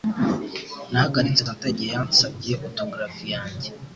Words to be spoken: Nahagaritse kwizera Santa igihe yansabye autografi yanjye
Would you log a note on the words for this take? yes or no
yes